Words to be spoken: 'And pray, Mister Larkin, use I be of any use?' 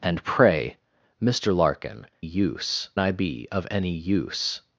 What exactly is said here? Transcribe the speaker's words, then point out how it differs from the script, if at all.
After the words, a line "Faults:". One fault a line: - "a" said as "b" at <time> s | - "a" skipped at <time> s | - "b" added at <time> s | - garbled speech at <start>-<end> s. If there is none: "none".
'And pray, Mister Larkin, use I be of any use?'
Faults:
none